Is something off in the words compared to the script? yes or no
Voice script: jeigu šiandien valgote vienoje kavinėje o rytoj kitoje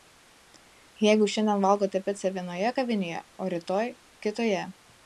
yes